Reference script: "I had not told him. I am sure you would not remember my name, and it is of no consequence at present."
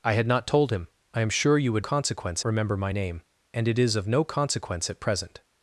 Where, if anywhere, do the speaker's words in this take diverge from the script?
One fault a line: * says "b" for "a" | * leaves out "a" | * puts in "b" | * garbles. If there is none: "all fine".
* says "consequence" for "not"